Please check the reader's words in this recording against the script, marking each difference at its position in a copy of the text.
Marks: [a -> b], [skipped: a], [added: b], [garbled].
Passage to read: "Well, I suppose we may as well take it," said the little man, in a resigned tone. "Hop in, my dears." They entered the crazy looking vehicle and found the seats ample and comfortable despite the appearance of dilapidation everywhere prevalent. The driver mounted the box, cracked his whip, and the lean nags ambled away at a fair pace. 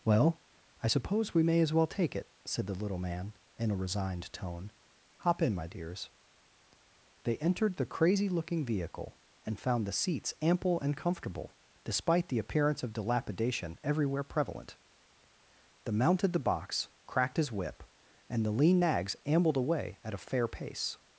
"Well, I suppose we may as well take it," said the little man, in a resigned tone. "Hop in, my dears." They entered the crazy looking vehicle and found the seats ample and comfortable despite the appearance of dilapidation everywhere prevalent. The [skipped: driver] mounted the box, cracked his whip, and the lean nags ambled away at a fair pace.